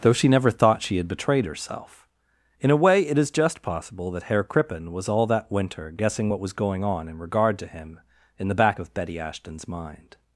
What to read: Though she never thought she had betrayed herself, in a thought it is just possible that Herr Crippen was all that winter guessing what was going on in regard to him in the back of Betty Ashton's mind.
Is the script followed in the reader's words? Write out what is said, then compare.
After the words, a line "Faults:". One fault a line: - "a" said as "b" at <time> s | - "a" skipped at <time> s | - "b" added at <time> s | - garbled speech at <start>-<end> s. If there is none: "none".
Though she never thought she had betrayed herself, in a way it is just possible that Herr Crippen was all that winter guessing what was going on in regard to him in the back of Betty Ashton's mind.
Faults:
- "thought" said as "way" at 2.8 s